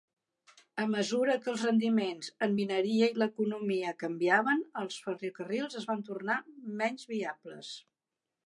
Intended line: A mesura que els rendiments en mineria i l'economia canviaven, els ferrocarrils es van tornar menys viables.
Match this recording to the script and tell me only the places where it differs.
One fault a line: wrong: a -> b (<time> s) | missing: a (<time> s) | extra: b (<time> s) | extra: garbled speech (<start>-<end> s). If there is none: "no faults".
no faults